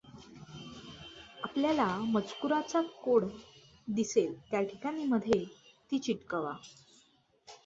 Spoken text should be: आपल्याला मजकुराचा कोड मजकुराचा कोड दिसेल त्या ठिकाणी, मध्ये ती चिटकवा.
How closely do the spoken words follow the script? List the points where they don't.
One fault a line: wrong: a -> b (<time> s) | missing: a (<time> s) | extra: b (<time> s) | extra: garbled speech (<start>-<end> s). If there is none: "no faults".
missing: मजकुराचा कोड (3.2 s)